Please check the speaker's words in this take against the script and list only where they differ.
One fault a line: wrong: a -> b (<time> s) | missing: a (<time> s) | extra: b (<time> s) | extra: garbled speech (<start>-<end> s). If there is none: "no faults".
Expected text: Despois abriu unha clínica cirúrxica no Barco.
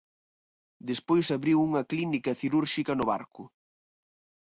no faults